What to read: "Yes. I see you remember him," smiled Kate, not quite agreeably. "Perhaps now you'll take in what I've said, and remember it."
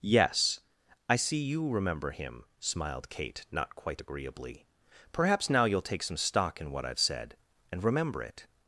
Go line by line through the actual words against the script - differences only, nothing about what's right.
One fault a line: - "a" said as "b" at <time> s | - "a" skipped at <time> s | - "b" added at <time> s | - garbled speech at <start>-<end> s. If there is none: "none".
- "some stock" added at 6.0 s